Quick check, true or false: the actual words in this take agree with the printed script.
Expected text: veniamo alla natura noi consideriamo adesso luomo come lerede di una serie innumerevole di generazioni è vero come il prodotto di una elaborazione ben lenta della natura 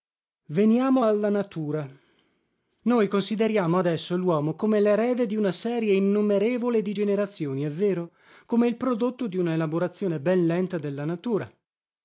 true